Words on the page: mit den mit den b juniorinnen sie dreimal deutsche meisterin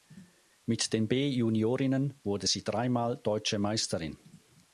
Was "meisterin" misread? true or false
false